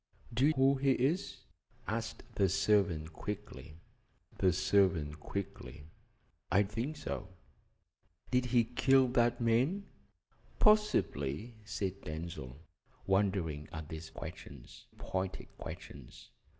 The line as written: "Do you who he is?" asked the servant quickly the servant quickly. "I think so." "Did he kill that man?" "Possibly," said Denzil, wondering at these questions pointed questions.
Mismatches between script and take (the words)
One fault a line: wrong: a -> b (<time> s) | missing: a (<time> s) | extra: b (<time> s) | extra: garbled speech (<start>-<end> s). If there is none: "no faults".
no faults